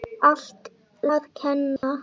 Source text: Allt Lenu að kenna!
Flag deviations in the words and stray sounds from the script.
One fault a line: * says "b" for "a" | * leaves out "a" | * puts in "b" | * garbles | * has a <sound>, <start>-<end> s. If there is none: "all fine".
* leaves out "Lenu"
* has a dropout, 1.8-1.8 s